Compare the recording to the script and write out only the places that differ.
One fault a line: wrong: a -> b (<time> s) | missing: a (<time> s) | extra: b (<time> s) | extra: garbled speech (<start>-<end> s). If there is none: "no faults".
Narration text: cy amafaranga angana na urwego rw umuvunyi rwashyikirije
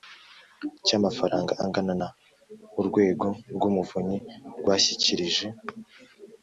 no faults